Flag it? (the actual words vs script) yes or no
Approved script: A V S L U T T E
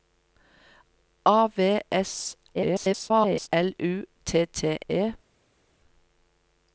yes